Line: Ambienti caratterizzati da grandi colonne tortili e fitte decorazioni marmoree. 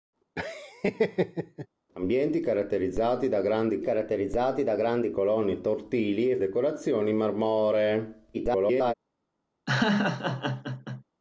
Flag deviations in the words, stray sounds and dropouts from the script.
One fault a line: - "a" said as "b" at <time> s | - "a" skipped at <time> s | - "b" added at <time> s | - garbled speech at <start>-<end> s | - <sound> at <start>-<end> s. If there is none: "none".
- laugh at 0.4-1.7 s
- "caratterizzati da grandi" added at 3.8 s
- "fitte" skipped at 6.4 s
- garbled speech at 8.3-8.9 s
- laugh at 9.7-11.0 s